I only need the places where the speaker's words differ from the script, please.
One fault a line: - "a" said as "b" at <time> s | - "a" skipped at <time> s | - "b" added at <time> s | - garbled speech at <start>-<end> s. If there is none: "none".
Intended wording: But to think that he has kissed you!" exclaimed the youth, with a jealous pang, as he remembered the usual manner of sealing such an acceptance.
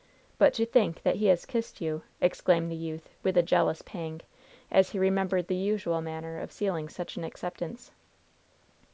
none